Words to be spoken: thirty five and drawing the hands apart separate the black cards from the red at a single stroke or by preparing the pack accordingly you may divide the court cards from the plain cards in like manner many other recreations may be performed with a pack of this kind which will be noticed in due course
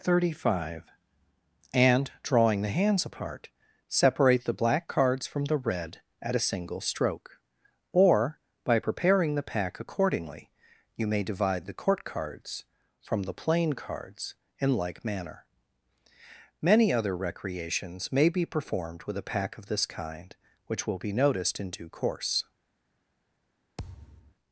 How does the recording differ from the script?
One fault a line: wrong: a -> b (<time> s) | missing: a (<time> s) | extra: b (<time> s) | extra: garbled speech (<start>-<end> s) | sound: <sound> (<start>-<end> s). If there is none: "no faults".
sound: thud (23.8-24.3 s)